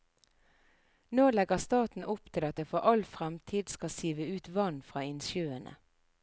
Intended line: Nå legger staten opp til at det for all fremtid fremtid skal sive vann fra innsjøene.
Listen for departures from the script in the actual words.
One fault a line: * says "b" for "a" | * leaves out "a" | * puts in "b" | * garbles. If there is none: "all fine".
* leaves out "fremtid"
* puts in "ut"